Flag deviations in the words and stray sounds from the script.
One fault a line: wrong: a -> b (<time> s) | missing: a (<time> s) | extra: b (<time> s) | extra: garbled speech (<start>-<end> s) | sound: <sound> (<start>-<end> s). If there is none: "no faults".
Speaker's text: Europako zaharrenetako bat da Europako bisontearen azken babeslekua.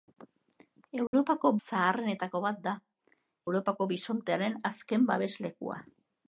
sound: dropout (1.1-1.1 s)